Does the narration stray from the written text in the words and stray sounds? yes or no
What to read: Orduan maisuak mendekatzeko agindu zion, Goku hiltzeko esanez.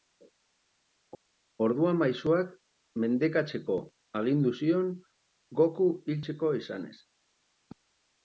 no